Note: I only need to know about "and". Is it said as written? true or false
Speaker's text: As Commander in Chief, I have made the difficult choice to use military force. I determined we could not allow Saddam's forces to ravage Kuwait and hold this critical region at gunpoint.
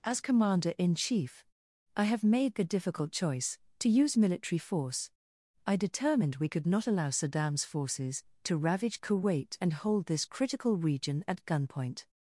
true